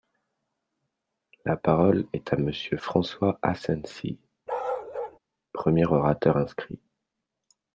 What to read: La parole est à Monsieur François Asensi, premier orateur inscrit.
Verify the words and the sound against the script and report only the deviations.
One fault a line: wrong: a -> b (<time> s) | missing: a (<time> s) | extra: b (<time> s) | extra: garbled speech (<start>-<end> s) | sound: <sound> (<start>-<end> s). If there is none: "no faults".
sound: bark (4.5-5.2 s)